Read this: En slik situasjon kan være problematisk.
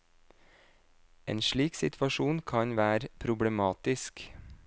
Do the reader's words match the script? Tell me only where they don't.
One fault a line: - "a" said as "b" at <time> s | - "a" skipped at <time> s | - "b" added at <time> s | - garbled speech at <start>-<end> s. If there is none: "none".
none